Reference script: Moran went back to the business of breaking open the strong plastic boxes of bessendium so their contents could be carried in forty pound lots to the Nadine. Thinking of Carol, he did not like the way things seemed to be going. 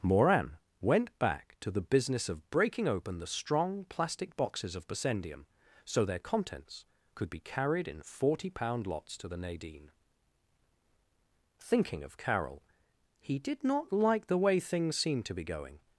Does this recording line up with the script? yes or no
yes